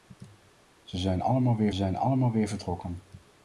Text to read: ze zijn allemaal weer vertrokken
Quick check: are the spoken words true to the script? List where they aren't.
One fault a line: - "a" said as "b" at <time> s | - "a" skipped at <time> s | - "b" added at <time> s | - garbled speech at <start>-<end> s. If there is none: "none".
- "zijn allemaal weer" added at 1.7 s